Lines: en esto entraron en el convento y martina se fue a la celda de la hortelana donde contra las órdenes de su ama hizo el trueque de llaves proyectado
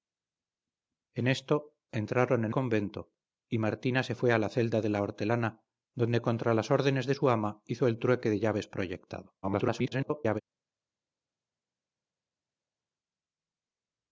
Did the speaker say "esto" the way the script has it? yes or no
yes